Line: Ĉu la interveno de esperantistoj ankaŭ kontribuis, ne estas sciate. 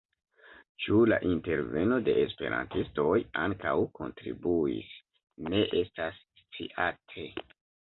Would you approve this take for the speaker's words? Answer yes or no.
yes